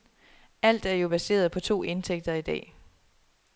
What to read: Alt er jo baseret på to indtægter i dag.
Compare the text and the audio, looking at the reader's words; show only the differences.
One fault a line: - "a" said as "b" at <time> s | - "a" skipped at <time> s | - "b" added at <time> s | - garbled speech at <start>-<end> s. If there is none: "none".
none